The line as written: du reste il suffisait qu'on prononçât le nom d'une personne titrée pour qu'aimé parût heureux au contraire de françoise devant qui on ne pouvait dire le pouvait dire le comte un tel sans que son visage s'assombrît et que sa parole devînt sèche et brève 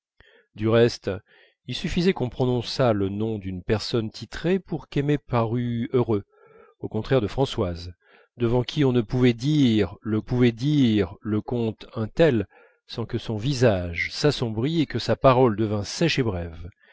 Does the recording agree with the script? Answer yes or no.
yes